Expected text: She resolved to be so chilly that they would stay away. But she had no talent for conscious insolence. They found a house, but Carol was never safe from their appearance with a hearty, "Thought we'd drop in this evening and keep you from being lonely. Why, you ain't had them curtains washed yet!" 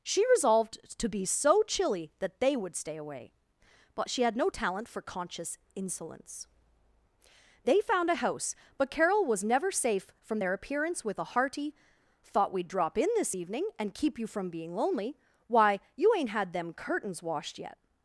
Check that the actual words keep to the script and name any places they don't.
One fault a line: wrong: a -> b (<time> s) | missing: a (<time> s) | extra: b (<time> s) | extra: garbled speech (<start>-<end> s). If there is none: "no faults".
no faults